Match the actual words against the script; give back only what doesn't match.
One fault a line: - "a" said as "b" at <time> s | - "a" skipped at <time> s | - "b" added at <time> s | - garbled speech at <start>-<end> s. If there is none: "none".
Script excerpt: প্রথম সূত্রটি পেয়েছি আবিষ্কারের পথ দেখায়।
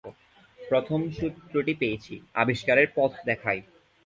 none